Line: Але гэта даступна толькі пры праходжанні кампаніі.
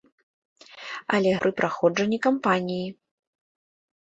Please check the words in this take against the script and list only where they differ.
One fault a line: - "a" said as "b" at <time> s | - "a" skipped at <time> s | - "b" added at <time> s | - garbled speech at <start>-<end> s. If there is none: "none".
- "гэта даступна толькі" skipped at 1.3 s